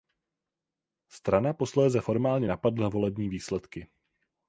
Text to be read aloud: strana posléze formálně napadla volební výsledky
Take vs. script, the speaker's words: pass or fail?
pass